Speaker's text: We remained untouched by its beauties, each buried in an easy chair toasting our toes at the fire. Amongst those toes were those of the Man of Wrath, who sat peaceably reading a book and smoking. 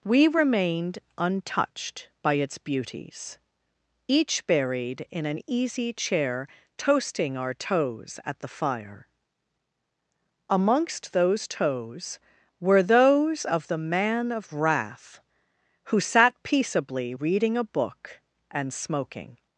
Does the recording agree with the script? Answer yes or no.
yes